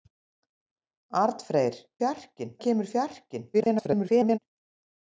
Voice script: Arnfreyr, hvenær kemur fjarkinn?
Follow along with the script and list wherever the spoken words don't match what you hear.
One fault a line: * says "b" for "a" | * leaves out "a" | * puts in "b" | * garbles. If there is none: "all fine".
* says "fjarkinn" for "hvenær"
* garbles